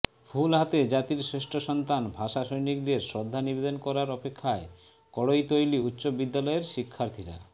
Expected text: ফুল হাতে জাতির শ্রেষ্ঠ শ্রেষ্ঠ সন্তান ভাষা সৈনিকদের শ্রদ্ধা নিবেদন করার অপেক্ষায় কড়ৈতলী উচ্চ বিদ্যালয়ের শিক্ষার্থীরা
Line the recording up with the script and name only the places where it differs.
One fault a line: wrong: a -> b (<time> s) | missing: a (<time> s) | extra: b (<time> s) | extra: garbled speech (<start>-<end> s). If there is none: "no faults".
missing: শ্রেষ্ঠ (1.5 s)